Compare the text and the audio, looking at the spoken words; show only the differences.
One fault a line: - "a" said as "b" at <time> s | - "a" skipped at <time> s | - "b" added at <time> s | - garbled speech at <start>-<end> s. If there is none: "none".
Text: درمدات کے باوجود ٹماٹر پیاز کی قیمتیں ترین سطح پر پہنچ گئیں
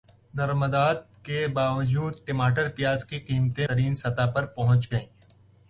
none